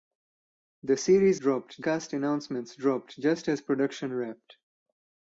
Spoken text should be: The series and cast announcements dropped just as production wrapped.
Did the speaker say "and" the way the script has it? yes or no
no